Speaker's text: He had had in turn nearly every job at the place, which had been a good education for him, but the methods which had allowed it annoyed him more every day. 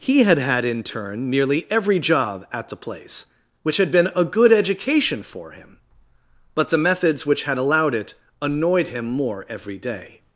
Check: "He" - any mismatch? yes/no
no